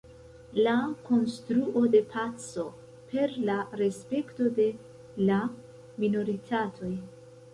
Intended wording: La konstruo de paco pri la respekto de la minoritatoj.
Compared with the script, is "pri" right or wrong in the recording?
wrong